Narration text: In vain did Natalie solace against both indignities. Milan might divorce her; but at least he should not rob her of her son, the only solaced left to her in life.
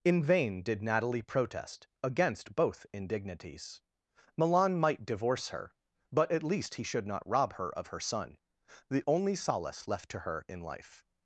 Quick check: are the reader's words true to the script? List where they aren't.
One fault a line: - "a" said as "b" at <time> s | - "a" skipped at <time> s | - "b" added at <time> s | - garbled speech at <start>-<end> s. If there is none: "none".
- "solace" said as "protest" at 1.2 s
- "solaced" said as "solace" at 9.3 s